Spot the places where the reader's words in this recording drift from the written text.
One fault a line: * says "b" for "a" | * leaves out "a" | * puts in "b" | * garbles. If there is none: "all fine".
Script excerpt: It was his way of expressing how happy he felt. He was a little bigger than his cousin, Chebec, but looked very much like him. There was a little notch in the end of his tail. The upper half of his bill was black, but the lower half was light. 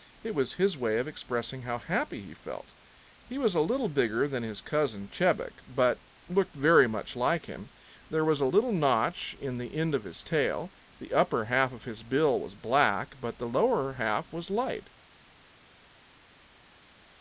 all fine